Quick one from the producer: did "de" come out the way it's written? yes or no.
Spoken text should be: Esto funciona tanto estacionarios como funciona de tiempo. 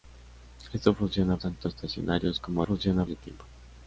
yes